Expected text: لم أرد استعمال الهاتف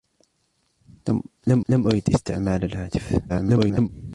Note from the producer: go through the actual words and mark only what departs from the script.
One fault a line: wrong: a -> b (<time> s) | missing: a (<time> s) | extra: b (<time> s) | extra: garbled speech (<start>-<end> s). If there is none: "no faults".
extra: لم (1.7 s)
extra: garbled speech (3.3-3.9 s)